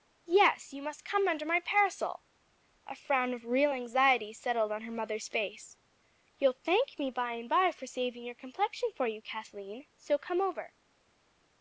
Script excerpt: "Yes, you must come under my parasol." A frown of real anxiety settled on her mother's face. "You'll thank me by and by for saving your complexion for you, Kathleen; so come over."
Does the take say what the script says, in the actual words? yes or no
yes